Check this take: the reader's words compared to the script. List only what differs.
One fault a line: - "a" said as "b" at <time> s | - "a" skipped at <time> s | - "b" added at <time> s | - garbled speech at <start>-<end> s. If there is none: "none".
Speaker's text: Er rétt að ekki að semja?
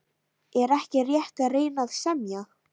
- "ekki" added at 0.8 s
- "ekki" said as "reyna" at 1.6 s